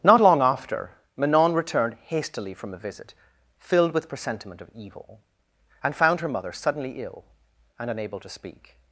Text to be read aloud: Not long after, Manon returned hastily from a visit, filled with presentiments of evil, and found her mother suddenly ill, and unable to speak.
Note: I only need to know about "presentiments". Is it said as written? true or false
false